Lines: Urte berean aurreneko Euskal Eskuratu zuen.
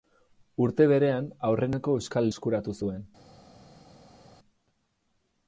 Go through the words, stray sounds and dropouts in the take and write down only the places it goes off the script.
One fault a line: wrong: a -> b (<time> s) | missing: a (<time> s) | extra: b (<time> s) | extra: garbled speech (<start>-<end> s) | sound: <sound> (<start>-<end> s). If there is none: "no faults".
no faults